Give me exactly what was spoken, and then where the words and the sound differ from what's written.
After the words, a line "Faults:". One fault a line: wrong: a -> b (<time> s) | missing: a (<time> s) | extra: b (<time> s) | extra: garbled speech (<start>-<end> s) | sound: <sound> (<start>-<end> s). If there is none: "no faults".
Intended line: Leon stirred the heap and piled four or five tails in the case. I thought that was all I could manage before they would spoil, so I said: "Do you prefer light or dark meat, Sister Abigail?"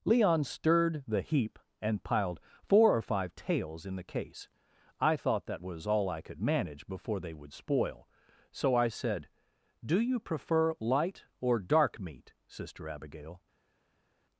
Leon stirred the heap and piled four or five tails in the case. I thought that was all I could manage before they would spoil, so I said: "Do you prefer light or dark meat, Sister Abigail?"
Faults:
no faults